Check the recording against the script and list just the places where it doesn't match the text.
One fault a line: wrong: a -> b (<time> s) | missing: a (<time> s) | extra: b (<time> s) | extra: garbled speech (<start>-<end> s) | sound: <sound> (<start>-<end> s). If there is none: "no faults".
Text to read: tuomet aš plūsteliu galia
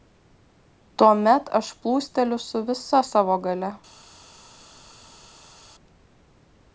extra: su visa savo (2.5 s)